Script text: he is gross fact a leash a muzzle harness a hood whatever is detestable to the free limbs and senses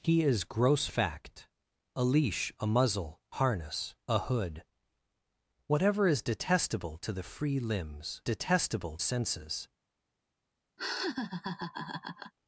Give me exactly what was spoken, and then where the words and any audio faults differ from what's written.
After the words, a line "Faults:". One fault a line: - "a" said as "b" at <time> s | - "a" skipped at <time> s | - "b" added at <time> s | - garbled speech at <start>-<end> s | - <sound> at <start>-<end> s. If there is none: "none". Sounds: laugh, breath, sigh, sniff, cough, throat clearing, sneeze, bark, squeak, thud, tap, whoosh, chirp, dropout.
he is gross fact a leash a muzzle harness a hood whatever is detestable to the free limbs detestable senses
Faults:
- "and" said as "detestable" at 8.2 s
- laugh at 10.8-12.3 s